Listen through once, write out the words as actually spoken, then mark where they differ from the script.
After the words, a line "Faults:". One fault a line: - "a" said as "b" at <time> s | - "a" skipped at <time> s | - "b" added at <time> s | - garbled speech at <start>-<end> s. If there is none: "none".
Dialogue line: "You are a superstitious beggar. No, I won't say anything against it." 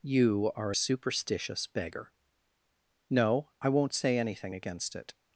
"You are a superstitious beggar. No, I won't say anything against it."
Faults:
none